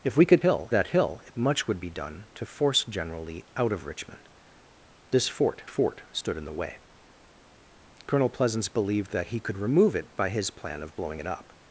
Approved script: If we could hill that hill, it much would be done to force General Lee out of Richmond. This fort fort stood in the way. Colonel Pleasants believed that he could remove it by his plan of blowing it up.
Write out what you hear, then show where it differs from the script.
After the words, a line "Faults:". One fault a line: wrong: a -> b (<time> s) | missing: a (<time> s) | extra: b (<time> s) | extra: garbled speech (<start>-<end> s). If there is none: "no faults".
If we could hill that hill, it much would be done to force General Lee out of Richmond. This fort fort stood in the way. Colonel Pleasants believed that he could remove it by his plan of blowing it up.
Faults:
no faults